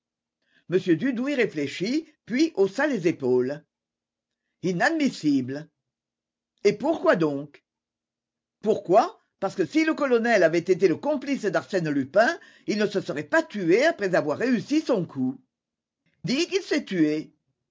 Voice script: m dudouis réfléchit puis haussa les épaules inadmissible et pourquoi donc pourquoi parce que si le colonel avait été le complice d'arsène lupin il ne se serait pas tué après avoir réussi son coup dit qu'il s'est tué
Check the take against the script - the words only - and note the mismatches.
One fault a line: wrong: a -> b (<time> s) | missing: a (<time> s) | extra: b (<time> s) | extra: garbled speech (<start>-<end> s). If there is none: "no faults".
no faults